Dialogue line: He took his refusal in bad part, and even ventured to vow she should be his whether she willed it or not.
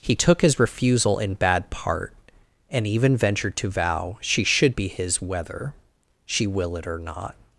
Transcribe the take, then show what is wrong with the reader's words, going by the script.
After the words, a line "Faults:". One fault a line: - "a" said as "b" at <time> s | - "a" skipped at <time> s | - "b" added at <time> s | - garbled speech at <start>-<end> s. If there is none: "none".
He took his refusal in bad part, and even ventured to vow she should be his whether she will it or not.
Faults:
- "willed" said as "will" at 6.5 s